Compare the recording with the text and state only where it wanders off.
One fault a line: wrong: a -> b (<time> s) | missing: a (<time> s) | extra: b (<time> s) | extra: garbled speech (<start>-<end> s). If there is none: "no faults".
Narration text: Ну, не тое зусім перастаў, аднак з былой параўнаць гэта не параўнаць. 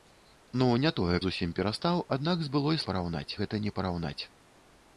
no faults